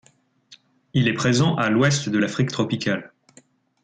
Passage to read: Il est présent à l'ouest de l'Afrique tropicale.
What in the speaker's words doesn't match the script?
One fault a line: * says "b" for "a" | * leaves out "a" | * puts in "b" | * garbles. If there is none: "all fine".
all fine